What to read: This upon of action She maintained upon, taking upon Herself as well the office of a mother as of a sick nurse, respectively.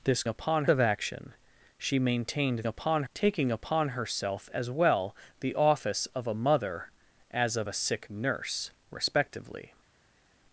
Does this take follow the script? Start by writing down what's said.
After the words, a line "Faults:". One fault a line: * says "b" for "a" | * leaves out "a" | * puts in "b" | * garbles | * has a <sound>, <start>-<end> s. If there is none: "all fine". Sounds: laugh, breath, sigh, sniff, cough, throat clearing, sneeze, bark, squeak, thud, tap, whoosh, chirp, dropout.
This upon of action She maintained upon, taking upon Herself as well the office of a mother as of a sick nurse, respectively.
Faults:
all fine